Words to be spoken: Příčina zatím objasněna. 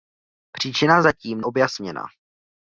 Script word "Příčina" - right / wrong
right